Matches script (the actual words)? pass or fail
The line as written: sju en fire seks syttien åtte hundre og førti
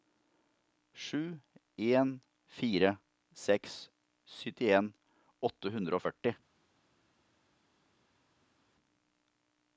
pass